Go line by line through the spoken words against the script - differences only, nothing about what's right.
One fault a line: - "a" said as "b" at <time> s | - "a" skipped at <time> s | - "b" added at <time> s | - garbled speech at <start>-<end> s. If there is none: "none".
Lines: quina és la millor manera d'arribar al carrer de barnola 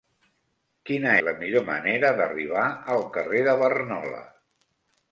- "és" skipped at 1.1 s